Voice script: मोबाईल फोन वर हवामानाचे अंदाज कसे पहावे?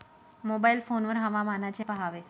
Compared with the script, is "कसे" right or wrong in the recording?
wrong